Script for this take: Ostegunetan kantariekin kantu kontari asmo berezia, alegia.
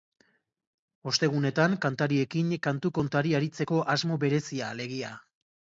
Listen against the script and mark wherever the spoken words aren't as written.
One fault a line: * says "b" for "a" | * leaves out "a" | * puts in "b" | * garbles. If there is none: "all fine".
* puts in "aritzeko"